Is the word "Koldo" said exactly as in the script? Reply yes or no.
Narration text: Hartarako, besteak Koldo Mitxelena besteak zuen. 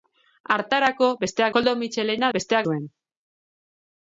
yes